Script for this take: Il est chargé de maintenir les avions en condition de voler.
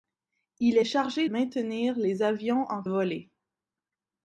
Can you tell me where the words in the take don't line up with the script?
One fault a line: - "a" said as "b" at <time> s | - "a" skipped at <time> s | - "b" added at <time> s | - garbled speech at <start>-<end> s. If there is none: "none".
- "de" skipped at 1.3 s
- "condition de" skipped at 2.8 s